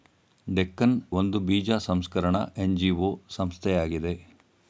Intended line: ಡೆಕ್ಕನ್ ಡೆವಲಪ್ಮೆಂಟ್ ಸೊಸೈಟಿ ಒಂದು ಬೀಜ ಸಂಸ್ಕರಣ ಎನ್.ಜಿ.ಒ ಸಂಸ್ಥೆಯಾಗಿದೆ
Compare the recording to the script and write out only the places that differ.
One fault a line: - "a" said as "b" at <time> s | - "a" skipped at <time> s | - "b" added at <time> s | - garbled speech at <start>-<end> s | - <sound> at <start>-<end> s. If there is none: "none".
- "ಡೆವಲಪ್ಮೆಂಟ್ ಸೊಸೈಟಿ" skipped at 0.9 s